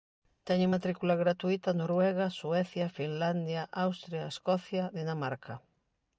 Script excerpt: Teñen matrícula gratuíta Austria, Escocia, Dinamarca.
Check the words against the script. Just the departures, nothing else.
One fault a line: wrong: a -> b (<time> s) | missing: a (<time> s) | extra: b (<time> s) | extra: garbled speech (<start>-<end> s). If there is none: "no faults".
extra: Noruega Suecia Finlandia (1.7 s)